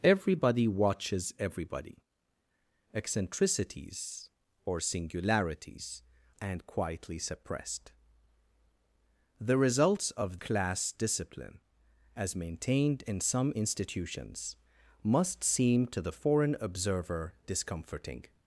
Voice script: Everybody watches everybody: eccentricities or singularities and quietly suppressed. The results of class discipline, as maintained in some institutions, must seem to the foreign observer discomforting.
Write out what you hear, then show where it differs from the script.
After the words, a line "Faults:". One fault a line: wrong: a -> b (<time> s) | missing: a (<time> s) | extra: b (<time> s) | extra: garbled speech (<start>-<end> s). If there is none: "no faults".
Everybody watches everybody: eccentricities or singularities and quietly suppressed. The results of class discipline, as maintained in some institutions, must seem to the foreign observer discomforting.
Faults:
no faults